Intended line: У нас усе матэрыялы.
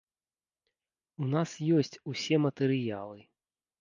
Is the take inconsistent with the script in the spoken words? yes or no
yes